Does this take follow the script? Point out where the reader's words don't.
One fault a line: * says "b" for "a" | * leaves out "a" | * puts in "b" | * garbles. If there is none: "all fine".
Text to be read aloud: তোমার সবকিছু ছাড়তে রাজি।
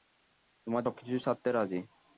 all fine